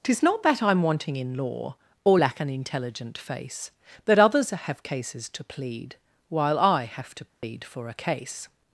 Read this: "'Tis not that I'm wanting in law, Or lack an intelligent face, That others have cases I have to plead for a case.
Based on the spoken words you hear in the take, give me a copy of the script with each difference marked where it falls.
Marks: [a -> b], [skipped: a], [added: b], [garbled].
"'Tis not that I'm wanting in law, Or lack an intelligent face, That others have cases [added: to plead While] I have to plead for a case.